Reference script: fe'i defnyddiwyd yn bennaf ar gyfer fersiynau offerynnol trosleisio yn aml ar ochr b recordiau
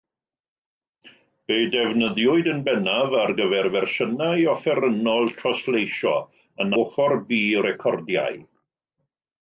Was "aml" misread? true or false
true